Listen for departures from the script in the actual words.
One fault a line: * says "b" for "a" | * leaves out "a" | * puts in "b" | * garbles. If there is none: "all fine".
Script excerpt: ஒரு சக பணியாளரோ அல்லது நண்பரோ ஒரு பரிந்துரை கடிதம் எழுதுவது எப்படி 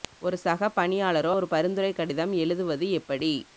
* leaves out "அல்லது நண்பரோ"